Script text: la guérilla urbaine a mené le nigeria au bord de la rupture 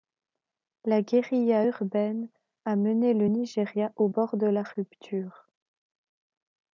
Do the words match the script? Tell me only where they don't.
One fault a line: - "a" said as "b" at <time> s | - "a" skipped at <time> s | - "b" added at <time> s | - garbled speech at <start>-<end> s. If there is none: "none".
none